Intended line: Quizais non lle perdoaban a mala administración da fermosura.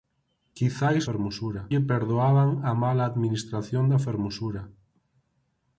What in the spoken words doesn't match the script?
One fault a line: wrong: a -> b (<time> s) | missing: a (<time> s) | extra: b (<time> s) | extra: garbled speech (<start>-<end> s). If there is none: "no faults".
wrong: non -> fermosura (1.1 s)